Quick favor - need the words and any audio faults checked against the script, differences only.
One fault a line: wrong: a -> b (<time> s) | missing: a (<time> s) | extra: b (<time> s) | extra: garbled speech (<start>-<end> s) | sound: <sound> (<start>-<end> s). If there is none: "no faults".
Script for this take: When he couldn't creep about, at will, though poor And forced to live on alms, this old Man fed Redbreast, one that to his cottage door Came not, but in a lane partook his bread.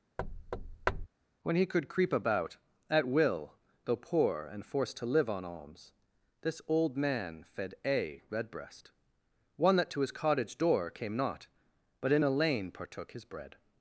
sound: thud (0.2-1.1 s)
wrong: couldn't -> could (1.6 s)
extra: A (7.8 s)